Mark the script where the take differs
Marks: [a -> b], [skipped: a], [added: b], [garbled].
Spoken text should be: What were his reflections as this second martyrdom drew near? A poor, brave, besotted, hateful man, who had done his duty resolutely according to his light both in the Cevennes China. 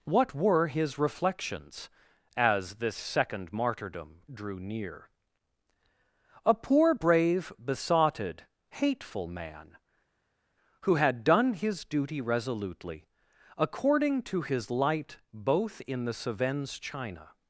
What were his reflections as this second martyrdom drew near? A poor, brave, besotted, hateful man, who had done his duty resolutely according to his light both in the Cevennes China.